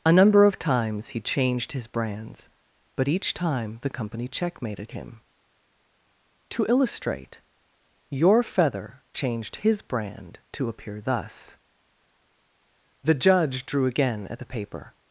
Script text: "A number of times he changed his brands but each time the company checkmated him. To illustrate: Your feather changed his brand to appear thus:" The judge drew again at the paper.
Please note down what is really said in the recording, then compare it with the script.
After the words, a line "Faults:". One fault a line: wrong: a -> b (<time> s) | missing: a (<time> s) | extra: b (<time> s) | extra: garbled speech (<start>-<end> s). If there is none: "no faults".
"A number of times he changed his brands but each time the company checkmated him. To illustrate: Your feather changed his brand to appear thus:" The judge drew again at the paper.
Faults:
no faults